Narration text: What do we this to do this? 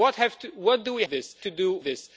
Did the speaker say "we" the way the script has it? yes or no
yes